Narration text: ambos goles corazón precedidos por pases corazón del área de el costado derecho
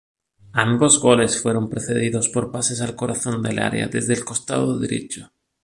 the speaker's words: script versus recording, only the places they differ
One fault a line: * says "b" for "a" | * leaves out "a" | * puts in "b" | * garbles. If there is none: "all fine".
* says "fueron" for "corazón"
* puts in "al"
* says "desde" for "de"